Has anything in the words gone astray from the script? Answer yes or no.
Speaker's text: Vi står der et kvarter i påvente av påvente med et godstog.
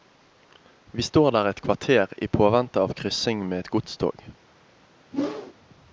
yes